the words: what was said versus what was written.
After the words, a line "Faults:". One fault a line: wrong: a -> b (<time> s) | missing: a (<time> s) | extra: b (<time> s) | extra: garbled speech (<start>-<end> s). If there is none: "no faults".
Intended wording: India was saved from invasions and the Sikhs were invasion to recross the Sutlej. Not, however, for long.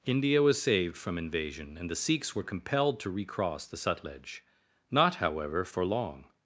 India was saved from invasion and the Sikhs were compelled to recross the Sutlej. Not, however, for long.
Faults:
wrong: invasions -> invasion (1.2 s)
wrong: invasion -> compelled (2.4 s)